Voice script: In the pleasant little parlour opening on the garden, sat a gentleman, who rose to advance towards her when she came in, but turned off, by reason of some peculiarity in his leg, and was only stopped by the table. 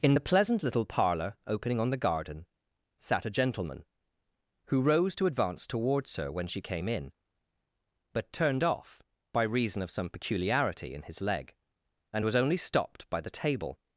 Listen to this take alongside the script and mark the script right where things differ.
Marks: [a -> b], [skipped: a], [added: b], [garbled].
In the pleasant little parlour opening on the garden, sat a gentleman, who rose to advance towards her when she came in, but turned off, by reason of some peculiarity in his leg, and was only stopped by the table.